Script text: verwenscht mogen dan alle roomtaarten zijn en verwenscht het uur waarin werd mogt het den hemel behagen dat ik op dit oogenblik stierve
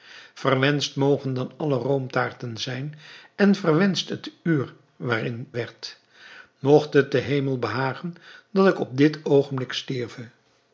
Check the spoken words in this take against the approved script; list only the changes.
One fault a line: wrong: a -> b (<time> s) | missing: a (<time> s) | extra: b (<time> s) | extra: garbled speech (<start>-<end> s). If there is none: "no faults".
no faults